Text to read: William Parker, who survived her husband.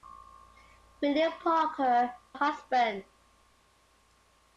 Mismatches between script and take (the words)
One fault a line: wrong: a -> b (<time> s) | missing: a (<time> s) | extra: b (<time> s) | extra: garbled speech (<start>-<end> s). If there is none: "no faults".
missing: who survived her (2.1 s)